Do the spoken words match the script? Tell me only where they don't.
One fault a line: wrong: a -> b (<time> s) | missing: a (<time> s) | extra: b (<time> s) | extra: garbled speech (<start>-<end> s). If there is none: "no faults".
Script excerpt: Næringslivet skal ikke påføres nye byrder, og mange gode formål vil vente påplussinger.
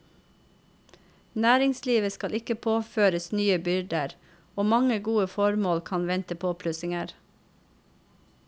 wrong: vil -> kan (5.9 s)